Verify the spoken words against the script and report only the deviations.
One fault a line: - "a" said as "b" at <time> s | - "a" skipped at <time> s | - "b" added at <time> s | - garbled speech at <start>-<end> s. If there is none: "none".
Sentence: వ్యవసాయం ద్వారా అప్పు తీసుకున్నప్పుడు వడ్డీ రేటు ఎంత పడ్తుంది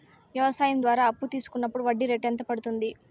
none